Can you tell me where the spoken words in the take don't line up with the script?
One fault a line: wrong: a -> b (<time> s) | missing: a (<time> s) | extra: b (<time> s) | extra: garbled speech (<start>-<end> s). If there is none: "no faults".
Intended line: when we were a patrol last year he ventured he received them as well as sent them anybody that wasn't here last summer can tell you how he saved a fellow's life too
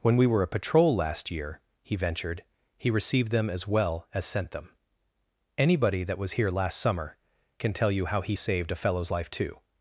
wrong: wasn't -> was (6.2 s)